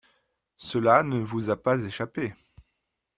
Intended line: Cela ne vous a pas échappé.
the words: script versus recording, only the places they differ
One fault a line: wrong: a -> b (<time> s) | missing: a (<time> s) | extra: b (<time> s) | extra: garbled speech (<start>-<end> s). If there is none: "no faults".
no faults